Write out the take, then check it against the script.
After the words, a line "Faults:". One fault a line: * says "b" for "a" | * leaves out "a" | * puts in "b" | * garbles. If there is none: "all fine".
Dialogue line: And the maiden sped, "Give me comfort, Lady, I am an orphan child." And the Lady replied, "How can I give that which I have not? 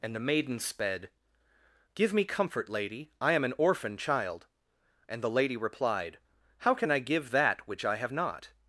And the maiden sped, "Give me comfort, Lady, I am an orphan child." And the Lady replied, "How can I give that which I have not?
Faults:
all fine